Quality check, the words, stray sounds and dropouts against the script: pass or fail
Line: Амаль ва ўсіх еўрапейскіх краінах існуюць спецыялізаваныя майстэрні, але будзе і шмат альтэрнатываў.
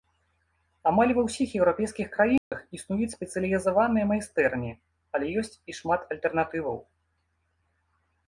fail